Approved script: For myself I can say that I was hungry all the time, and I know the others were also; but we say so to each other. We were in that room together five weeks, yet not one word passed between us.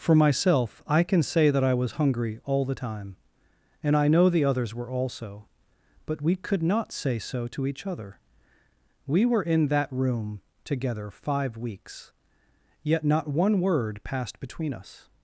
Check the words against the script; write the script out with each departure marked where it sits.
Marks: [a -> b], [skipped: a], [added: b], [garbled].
For myself I can say that I was hungry all the time, and I know the others were also; but we [added: could not] say so to each other. We were in that room together five weeks, yet not one word passed between us.